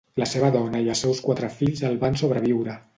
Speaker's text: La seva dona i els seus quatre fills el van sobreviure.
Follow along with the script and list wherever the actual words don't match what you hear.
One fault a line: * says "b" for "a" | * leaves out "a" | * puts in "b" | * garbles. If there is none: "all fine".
all fine